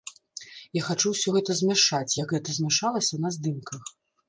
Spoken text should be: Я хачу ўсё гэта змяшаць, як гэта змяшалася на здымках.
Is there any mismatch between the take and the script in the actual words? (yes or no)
no